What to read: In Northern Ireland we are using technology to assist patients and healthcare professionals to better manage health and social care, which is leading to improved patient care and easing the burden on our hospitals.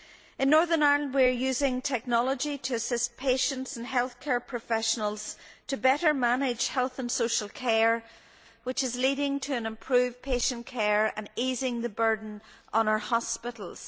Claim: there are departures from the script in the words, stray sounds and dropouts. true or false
false